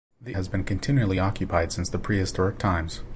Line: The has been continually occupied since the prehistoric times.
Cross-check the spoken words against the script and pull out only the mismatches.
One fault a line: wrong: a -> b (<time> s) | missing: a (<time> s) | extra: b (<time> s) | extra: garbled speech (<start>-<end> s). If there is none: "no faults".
no faults